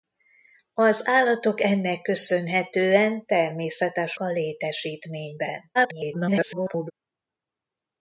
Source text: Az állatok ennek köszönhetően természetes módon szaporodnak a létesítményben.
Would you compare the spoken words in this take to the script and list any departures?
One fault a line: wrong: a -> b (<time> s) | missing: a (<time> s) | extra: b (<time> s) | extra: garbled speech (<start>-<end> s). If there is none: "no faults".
missing: módon szaporodnak (4.2 s)
extra: garbled speech (5.7-6.9 s)